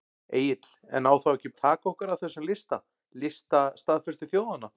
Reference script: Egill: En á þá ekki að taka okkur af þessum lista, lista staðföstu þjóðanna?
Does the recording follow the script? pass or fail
pass